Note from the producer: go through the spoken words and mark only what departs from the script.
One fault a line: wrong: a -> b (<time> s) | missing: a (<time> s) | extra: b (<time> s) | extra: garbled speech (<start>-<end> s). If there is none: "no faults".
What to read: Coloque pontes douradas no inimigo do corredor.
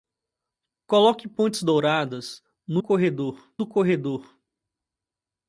wrong: inimigo -> corredor (2.8 s)